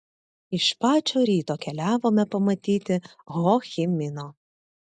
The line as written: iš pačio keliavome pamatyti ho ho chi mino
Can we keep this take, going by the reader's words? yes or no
no